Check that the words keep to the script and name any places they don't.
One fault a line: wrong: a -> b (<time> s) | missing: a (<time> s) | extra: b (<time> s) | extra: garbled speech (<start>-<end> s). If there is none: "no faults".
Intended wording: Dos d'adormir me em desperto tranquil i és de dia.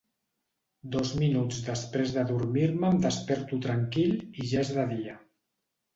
extra: minuts després (1.2 s)
extra: ja (4.5 s)